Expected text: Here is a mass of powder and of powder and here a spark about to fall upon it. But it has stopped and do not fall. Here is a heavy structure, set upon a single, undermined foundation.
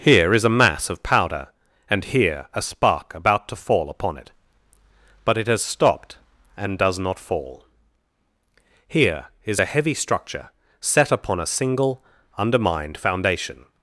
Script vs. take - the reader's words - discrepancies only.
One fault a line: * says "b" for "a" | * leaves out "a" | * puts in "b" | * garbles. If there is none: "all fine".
* leaves out "of powder and"
* says "does" for "do"